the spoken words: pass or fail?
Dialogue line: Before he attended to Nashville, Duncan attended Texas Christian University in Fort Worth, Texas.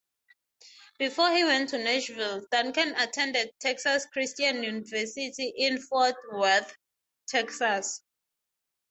fail